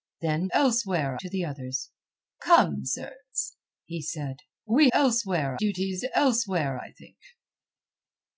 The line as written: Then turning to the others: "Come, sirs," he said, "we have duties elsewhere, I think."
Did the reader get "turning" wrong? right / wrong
wrong